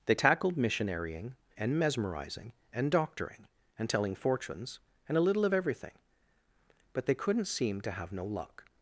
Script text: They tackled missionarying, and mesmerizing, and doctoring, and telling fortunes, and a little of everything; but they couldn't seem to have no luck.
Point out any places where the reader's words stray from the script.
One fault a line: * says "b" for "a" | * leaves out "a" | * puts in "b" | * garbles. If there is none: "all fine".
all fine